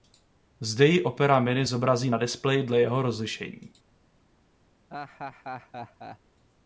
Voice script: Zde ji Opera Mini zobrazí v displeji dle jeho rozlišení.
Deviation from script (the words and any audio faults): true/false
true